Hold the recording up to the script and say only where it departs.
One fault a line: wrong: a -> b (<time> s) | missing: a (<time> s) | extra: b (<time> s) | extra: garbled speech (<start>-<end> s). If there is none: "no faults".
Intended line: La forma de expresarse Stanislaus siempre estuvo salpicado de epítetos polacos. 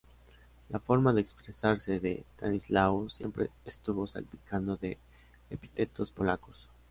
extra: de (2.0 s)